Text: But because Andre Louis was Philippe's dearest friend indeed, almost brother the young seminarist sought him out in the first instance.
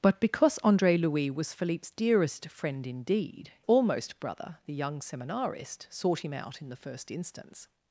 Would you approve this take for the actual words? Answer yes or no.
yes